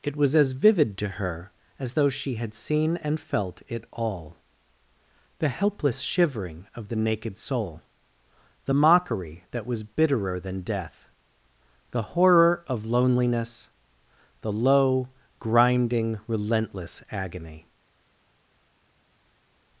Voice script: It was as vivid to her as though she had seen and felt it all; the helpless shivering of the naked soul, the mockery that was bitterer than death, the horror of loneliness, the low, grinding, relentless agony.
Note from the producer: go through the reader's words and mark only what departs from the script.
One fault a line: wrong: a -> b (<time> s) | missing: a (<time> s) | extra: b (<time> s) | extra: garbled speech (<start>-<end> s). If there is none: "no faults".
no faults